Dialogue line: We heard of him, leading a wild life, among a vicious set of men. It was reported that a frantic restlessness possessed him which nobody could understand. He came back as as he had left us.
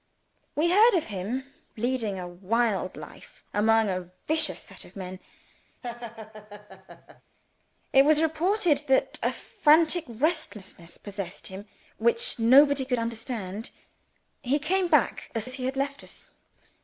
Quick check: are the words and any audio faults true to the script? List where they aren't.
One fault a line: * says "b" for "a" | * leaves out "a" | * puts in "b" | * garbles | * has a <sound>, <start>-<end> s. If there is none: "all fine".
* has a laugh, 5.8-7.2 s